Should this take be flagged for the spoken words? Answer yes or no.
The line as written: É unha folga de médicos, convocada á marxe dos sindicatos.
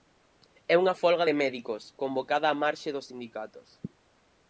no